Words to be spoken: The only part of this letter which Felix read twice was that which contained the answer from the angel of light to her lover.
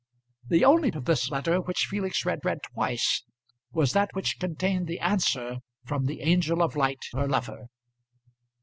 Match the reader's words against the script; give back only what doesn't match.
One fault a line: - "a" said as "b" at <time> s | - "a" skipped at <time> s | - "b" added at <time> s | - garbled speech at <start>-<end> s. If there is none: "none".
- "part" skipped at 0.9 s
- "read" added at 2.5 s
- "to" skipped at 7.1 s